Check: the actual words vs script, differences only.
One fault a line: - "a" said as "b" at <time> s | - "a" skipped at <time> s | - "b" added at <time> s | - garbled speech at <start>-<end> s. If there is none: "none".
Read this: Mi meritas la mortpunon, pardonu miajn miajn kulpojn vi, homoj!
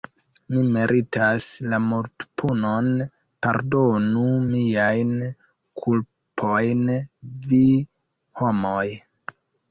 - "miajn" skipped at 5.1 s